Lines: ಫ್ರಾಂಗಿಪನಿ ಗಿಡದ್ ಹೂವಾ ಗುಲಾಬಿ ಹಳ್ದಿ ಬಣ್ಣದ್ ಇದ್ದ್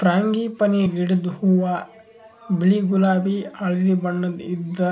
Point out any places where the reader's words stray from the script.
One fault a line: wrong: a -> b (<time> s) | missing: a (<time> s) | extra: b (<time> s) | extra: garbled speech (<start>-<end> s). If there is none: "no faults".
extra: ಬಿಳಿ (2.5 s)